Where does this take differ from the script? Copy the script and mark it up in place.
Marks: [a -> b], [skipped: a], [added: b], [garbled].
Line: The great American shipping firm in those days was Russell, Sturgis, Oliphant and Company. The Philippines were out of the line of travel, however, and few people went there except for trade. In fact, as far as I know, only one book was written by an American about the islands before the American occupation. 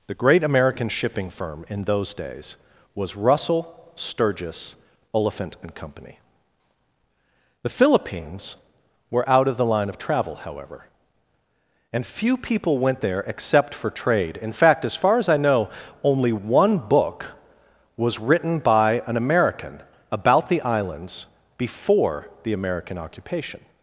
The great American shipping firm in those days was Russell, Sturgis, Oliphant and Company. The Philippines were out of the line of travel, however, and few people went there except for trade. In fact, as far as I know, only one book was written by an American about the islands before the American occupation.